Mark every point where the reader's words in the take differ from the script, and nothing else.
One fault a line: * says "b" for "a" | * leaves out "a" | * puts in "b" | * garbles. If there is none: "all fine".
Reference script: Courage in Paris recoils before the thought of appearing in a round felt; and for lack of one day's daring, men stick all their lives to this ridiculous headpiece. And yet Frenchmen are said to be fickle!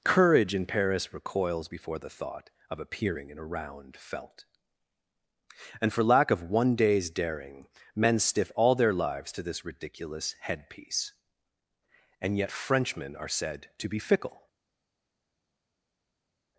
* says "stiff" for "stick"